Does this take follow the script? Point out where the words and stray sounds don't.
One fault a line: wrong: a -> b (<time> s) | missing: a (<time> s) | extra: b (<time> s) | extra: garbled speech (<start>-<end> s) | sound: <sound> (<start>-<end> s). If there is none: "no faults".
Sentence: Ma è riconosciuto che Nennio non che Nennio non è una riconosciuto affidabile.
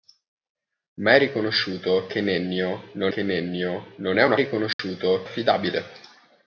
sound: dropout (4.7-4.8 s)